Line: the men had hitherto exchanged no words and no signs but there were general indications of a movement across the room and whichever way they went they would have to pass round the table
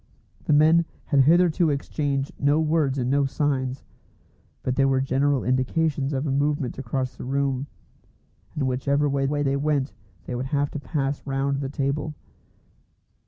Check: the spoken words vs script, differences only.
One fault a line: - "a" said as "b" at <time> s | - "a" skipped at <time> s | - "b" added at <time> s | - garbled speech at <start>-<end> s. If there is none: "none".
- "way" added at 9.2 s